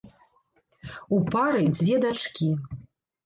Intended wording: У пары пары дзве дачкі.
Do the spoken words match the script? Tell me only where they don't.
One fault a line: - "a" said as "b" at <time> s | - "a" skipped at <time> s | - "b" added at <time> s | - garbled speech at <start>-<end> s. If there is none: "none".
- "пары" skipped at 1.6 s